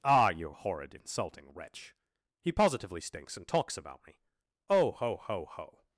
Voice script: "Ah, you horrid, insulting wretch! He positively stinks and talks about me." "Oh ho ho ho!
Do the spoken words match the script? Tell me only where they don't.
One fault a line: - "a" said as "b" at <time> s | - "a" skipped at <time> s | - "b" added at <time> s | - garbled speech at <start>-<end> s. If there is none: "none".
none